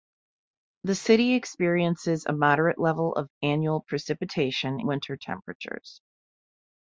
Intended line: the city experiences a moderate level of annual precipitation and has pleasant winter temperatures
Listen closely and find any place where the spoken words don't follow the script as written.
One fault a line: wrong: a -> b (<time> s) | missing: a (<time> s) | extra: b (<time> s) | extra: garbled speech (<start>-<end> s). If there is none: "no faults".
missing: and has pleasant (4.8 s)